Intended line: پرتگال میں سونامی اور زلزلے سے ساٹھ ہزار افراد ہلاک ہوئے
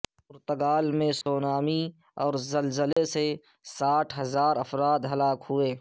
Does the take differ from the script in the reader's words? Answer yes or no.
no